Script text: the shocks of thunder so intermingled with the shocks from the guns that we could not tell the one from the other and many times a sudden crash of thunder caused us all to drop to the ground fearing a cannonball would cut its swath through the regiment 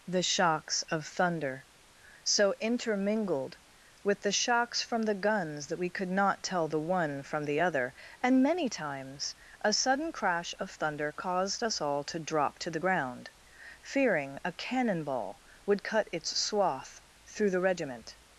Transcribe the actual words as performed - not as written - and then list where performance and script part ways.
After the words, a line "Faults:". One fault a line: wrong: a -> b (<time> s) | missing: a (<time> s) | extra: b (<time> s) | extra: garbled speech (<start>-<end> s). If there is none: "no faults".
the shocks of thunder so intermingled with the shocks from the guns that we could not tell the one from the other and many times a sudden crash of thunder caused us all to drop to the ground fearing a cannonball would cut its swath through the regiment
Faults:
no faults